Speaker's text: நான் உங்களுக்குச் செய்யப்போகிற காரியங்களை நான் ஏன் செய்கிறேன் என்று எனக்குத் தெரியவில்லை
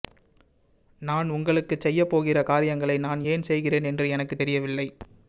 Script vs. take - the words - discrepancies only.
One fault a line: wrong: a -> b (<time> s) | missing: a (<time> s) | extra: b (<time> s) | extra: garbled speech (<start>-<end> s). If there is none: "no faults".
no faults